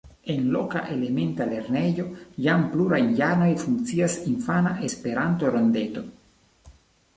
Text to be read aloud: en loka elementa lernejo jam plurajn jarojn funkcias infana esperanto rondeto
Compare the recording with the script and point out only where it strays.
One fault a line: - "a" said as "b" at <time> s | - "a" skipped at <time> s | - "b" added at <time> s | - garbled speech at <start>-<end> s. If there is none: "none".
none